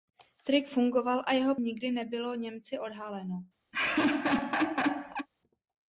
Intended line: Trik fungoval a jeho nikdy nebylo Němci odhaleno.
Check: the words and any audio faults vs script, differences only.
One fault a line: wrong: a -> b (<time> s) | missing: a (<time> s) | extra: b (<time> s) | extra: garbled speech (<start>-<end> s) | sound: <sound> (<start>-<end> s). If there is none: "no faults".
sound: laugh (3.7-5.3 s)